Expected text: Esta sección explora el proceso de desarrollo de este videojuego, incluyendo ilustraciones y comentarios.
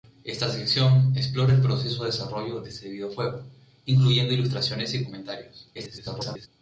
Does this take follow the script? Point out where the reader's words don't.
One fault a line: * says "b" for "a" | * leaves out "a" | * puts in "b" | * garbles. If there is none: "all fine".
* garbles